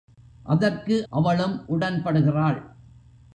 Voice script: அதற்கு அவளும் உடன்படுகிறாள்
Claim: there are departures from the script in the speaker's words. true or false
false